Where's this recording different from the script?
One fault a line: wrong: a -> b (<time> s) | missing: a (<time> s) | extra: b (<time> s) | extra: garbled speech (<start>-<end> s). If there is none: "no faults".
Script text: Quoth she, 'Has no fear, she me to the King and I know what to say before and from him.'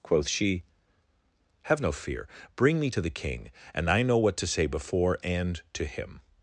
wrong: Has -> Have (1.6 s)
wrong: she -> bring (2.5 s)
wrong: from -> to (5.7 s)